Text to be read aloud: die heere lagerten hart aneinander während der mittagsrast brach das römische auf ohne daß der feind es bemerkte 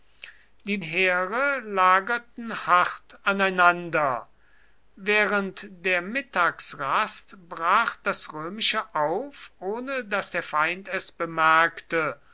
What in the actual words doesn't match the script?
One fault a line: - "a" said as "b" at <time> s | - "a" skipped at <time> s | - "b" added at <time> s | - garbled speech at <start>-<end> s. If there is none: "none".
none